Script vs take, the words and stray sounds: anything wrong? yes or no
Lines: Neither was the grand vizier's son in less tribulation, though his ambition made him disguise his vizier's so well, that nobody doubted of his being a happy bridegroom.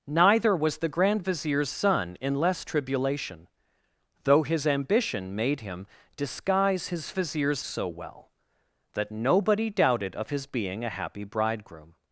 no